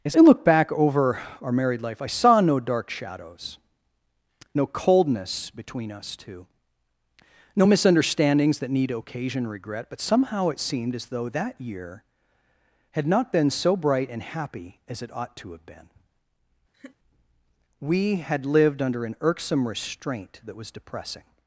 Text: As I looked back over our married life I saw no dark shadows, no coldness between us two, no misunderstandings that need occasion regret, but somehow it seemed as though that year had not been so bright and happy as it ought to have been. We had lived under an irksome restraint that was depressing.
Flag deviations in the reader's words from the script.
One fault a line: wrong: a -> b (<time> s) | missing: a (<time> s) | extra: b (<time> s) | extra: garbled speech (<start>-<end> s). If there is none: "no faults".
wrong: looked -> look (0.2 s)